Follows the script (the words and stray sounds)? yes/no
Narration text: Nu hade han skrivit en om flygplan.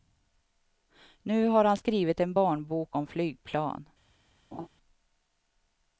no